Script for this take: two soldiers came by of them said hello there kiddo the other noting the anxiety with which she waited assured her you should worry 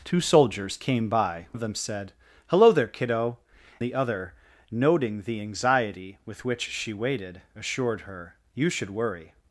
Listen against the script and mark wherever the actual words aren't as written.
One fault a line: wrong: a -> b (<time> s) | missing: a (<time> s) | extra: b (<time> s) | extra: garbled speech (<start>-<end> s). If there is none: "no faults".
no faults